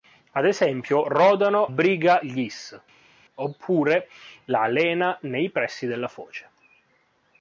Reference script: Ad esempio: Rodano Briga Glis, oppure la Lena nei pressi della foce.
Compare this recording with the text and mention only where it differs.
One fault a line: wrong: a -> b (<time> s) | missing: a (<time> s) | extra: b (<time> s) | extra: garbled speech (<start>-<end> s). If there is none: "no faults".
no faults